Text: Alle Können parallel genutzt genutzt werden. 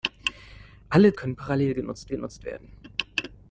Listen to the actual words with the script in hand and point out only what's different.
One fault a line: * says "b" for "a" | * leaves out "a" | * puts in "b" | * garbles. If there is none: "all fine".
all fine